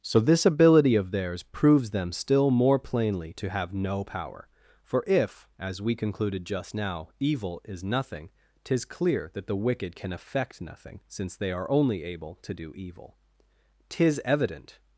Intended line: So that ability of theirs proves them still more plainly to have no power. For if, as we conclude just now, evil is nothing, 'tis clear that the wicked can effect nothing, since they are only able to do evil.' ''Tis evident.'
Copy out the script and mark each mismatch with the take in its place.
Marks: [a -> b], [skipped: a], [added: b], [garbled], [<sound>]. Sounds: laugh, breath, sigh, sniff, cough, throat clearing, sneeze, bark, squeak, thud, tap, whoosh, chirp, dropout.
So [that -> this] ability of theirs proves them still more plainly to have no power. For if, as we [conclude -> concluded] just now, evil is nothing, 'tis clear that the wicked can effect nothing, since they are only able to do evil.' ''Tis evident.'